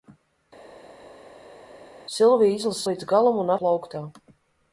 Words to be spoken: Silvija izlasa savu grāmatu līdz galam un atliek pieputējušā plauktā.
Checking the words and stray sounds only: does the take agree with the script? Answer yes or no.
no